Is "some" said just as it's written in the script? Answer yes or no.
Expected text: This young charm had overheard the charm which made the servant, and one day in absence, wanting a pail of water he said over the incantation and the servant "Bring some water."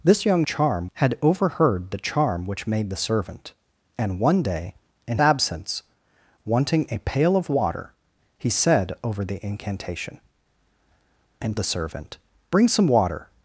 yes